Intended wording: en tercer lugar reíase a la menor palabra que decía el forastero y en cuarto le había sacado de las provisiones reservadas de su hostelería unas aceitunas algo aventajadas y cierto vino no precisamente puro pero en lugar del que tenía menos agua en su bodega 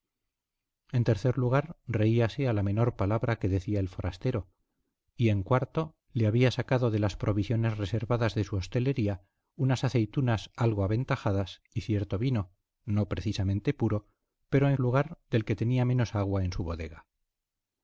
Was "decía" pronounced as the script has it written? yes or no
yes